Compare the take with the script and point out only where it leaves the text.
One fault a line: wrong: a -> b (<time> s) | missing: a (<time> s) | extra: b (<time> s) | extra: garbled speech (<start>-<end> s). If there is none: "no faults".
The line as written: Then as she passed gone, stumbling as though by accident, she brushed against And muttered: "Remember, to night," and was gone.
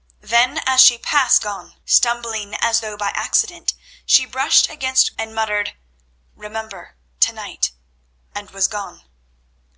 no faults